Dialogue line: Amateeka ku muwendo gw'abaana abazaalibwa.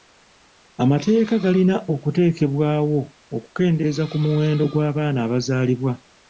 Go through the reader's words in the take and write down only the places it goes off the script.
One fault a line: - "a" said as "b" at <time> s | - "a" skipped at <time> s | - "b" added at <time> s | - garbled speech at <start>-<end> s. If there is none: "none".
- "galina okuteekebwawo okukendeeza" added at 1.4 s